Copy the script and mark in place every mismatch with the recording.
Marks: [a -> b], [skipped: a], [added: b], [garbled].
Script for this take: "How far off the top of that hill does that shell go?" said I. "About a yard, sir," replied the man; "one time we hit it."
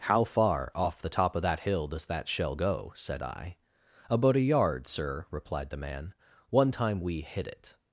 "How far off the top of that hill does that shell go?" said I. "About a yard, sir," replied the man; "one time we hit it."